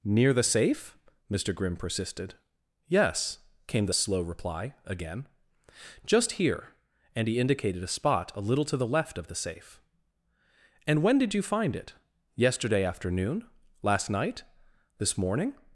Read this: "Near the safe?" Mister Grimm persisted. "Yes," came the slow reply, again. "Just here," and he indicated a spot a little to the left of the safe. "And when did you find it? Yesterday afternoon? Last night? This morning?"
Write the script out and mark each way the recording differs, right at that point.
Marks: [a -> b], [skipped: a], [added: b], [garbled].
"Near the safe?" Mister Grimm persisted. "Yes," came the slow reply, again. "Just here," and he indicated a spot a little to the left of the safe. "And when did you find it? Yesterday afternoon? Last night? This morning?"